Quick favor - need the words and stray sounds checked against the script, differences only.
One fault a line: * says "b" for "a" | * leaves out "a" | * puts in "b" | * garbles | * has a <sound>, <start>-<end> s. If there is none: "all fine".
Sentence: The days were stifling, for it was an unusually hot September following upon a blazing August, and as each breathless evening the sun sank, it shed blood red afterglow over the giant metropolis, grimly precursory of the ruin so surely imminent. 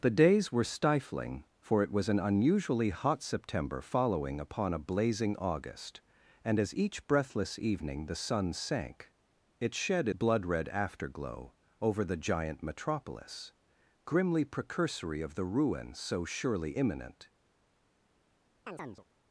* has a chirp, 18.7-19.1 s